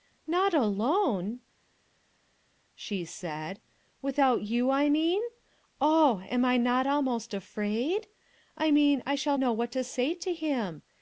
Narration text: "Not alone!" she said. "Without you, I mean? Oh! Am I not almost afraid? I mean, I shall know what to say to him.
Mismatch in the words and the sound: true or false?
false